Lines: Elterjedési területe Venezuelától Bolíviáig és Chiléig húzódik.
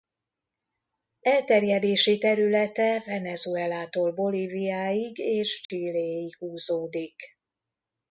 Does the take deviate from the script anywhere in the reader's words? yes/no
no